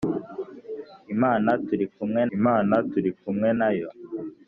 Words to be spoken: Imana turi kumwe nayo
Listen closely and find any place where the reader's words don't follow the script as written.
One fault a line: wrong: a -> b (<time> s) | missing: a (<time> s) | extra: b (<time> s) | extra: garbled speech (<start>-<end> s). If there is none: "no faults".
extra: imana turi kumwe (2.4 s)